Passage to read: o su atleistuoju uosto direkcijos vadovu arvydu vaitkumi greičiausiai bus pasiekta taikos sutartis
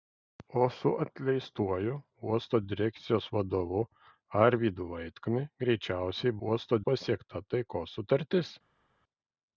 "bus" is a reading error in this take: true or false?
true